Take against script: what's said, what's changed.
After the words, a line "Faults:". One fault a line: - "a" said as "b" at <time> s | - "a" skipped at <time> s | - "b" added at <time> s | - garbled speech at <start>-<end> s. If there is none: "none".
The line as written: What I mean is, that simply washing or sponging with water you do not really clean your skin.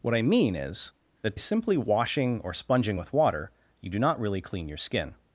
What I mean is, that simply washing or sponging with water you do not really clean your skin.
Faults:
none